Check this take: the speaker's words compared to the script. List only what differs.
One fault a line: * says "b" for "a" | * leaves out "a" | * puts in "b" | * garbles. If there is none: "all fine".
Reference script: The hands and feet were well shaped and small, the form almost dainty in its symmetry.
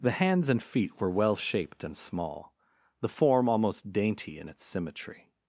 all fine